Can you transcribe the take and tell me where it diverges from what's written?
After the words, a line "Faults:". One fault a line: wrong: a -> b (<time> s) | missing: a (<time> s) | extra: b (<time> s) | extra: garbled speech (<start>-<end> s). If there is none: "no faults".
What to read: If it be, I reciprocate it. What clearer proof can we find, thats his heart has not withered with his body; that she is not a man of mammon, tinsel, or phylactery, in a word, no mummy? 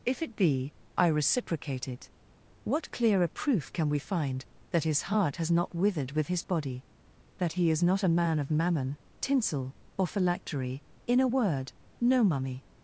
If it be, I reciprocate it. What clearer proof can we find, that his heart has not withered with his body; that he is not a man of mammon, tinsel, or phylactery, in a word, no mummy?
Faults:
wrong: thats -> that (4.7 s)
wrong: she -> he (7.5 s)